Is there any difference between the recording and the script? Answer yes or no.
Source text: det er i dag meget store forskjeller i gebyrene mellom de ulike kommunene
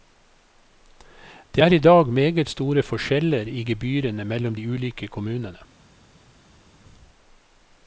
no